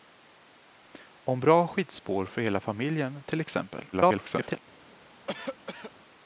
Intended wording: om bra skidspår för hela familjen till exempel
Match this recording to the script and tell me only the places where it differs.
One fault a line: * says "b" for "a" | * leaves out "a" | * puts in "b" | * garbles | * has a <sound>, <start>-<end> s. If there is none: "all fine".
* garbles
* has a cough, 5.3-5.9 s